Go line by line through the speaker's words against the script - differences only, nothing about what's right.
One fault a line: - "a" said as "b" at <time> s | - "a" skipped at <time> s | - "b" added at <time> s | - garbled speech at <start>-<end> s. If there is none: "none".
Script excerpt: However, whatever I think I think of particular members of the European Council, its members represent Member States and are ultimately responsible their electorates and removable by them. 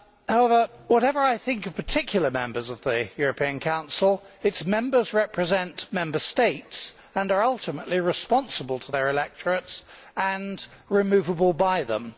- "I think" skipped at 1.6 s
- "to" added at 8.8 s